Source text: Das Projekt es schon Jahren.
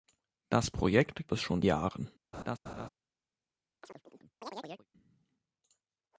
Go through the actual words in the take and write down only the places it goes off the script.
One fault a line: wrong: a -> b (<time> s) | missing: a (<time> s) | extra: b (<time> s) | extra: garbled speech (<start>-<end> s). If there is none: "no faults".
no faults